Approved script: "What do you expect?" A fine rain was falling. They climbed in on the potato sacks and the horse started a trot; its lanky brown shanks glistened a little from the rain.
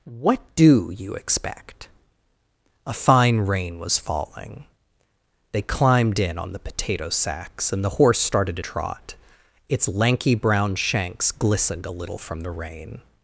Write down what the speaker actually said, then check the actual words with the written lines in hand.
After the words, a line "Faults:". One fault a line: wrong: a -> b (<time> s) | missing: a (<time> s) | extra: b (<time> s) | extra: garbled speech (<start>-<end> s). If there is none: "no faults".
"What do you expect?" A fine rain was falling. They climbed in on the potato sacks and the horse started a trot; its lanky brown shanks glistened a little from the rain.
Faults:
no faults